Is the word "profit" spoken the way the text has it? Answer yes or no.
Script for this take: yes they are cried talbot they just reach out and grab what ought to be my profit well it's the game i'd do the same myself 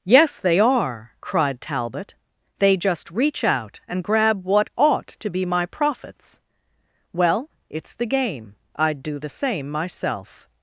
no